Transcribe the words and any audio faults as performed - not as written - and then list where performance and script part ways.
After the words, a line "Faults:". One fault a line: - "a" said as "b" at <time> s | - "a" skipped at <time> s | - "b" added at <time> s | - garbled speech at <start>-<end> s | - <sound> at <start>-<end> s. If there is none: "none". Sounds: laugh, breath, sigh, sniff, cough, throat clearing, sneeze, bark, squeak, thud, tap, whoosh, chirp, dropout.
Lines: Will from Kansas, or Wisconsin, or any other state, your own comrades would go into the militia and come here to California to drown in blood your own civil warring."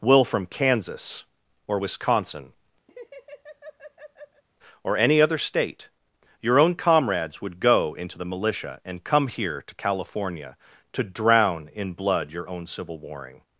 Will from Kansas, or Wisconsin, or any other state, your own comrades would go into the militia and come here to California to drown in blood your own civil warring."
Faults:
- laugh at 2.9-4.4 s